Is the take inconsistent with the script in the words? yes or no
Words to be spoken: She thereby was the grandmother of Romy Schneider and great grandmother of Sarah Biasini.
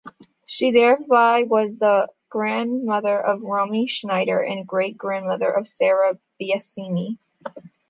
no